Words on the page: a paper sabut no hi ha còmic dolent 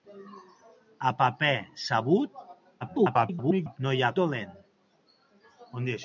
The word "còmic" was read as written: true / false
false